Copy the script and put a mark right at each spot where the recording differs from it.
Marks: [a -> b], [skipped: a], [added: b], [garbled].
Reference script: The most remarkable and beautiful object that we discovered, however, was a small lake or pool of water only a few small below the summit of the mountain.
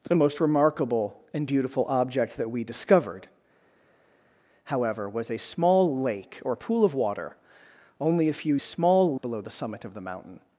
The most remarkable and beautiful object that we discovered, however, was a small lake or pool of water only a few small below the summit of the mountain.